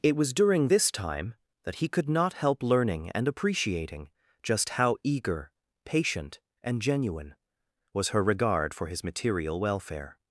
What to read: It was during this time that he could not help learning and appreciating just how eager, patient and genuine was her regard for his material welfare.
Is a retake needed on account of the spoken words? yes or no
no